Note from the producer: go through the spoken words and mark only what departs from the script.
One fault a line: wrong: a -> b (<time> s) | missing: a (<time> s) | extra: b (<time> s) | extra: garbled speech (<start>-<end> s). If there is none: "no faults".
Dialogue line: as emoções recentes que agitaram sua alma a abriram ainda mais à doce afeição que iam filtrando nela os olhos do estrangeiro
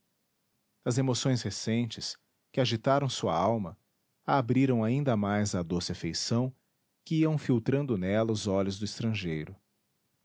no faults